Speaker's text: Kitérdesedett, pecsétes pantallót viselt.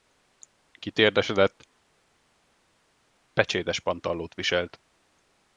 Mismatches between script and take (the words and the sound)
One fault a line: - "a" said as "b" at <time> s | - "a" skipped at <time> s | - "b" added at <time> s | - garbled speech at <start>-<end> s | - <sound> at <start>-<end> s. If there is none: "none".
none